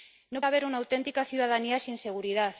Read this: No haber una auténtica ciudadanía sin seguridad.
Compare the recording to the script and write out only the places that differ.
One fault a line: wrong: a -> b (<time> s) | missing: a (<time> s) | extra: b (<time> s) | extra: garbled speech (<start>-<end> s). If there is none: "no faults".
no faults